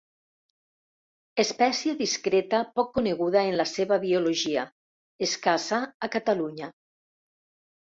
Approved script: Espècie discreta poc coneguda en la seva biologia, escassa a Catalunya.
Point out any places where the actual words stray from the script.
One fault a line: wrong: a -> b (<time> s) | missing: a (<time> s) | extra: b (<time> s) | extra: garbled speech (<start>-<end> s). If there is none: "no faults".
no faults